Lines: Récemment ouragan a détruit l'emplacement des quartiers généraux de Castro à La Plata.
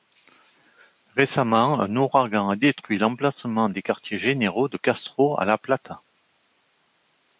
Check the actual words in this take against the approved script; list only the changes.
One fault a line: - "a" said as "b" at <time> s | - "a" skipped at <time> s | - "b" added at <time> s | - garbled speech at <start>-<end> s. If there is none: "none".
- "un" added at 1.8 s